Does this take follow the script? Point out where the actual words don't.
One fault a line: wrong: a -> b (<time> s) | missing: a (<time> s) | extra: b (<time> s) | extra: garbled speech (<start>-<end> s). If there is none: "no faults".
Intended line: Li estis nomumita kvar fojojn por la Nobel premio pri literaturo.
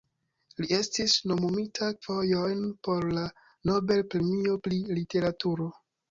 missing: kvar (1.9 s)